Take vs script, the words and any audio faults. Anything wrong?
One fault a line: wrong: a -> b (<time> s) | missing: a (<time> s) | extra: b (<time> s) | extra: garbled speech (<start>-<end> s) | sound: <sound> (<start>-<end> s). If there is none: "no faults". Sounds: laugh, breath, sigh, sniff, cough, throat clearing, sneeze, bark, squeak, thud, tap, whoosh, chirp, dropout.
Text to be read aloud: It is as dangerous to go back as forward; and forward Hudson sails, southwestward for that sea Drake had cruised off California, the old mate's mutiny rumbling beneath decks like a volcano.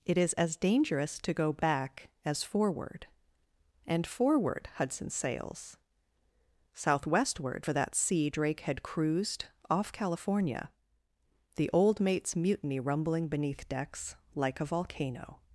no faults